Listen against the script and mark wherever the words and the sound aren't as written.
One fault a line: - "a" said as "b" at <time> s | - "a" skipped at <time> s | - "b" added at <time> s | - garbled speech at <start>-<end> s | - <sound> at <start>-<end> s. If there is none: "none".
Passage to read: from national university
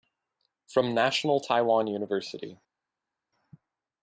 - "taiwan" added at 1.4 s